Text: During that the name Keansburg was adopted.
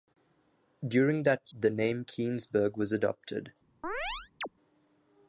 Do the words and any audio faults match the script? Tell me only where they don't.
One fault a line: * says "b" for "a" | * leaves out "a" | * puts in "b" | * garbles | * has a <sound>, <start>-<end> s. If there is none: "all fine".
* has a chirp, 3.8-4.5 s